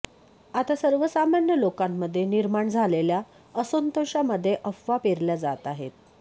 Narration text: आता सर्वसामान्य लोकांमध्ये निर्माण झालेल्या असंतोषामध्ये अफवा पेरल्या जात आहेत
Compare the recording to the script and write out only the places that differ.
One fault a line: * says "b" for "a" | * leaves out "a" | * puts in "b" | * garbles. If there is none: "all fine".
all fine